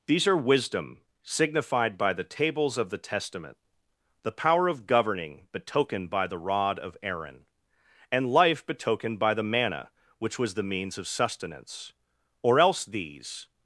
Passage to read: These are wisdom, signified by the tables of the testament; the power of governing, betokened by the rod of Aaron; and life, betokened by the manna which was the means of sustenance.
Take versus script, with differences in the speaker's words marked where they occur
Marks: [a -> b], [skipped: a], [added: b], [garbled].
These are wisdom, signified by the tables of the testament; the power of governing, betokened by the rod of Aaron; and life, betokened by the manna which was the means of sustenance. [added: Or else these]